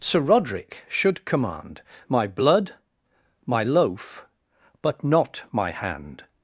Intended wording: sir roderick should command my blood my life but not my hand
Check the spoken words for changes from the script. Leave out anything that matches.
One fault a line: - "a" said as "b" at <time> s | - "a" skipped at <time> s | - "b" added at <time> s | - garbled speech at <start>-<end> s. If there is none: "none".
- "life" said as "loaf" at 3.6 s